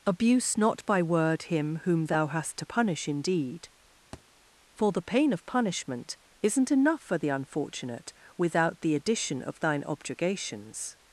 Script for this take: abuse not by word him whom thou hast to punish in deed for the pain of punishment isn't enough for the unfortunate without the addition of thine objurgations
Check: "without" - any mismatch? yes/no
no